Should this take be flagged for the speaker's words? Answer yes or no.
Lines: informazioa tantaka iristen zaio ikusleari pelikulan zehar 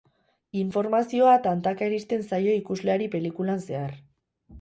no